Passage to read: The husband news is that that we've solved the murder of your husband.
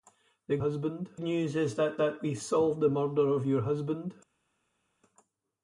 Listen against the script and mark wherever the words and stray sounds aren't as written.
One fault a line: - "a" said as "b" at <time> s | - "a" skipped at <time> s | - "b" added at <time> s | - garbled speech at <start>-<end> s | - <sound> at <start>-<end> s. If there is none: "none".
none